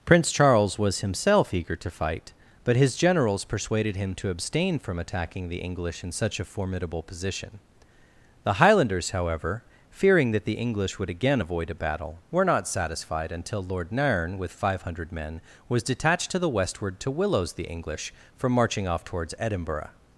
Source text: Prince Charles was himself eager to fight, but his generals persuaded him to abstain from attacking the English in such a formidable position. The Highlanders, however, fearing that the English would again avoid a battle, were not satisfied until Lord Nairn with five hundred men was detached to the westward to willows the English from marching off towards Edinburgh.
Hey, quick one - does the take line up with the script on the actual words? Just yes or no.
yes